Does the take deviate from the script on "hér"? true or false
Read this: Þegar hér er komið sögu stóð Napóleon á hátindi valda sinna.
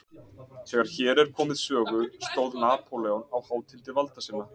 false